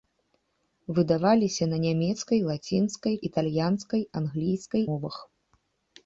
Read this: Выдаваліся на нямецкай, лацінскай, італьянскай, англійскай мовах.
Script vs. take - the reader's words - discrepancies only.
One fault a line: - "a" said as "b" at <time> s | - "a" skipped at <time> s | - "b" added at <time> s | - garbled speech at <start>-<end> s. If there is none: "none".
none